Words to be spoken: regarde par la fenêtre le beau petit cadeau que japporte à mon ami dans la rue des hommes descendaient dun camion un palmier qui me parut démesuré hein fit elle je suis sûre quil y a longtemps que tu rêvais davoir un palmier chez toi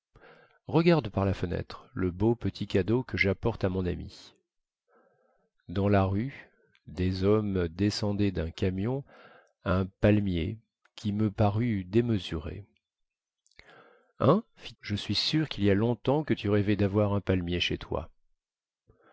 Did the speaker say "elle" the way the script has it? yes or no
no